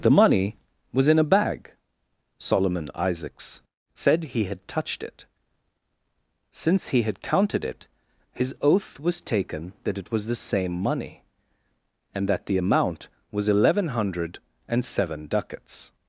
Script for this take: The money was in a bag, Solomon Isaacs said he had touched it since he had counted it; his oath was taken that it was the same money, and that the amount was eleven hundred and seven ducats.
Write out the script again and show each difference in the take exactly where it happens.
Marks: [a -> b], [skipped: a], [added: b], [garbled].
The money was in a bag, Solomon Isaacs said he had touched it since he had counted it; his oath was taken that it was the same money, and that the amount was eleven hundred and seven ducats.